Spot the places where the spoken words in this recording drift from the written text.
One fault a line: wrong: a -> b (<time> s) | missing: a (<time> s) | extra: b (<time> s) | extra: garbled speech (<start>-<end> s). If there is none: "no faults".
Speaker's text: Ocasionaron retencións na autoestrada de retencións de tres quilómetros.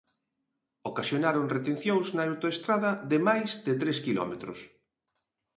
wrong: retencións -> máis (3.3 s)